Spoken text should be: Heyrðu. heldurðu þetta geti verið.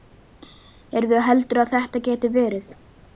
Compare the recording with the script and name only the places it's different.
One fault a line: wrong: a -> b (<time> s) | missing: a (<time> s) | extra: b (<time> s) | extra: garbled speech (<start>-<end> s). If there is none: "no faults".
extra: að (1.6 s)